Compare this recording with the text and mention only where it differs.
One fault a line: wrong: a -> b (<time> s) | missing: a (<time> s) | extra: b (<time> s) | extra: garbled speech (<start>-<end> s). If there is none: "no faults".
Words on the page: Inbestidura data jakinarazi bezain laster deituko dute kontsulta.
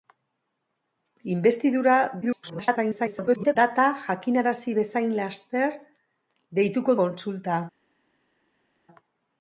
extra: garbled speech (2.2-3.6 s)
missing: dute (7.0 s)